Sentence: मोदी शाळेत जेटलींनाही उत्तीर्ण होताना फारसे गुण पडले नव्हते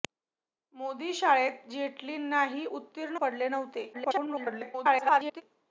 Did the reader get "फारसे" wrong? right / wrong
wrong